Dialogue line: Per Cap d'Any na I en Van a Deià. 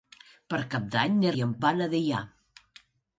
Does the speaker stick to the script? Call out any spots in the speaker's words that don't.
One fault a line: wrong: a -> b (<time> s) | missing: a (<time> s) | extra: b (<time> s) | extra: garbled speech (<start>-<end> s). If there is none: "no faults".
no faults